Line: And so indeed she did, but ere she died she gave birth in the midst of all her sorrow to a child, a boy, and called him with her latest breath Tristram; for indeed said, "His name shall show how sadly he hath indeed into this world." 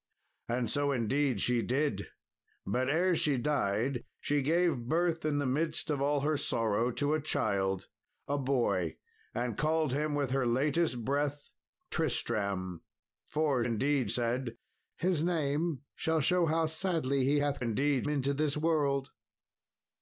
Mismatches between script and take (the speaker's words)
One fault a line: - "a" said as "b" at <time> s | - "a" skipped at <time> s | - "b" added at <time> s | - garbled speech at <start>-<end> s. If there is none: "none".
none